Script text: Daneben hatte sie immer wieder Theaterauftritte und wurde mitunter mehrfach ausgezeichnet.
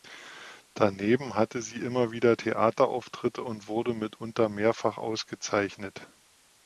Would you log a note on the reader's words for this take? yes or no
no